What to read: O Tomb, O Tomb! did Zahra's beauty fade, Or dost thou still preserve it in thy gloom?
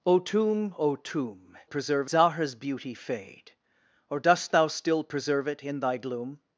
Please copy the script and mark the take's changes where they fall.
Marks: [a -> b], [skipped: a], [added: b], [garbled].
O Tomb, O Tomb! [did -> preserve] Zahra's beauty fade, Or dost thou still preserve it in thy gloom?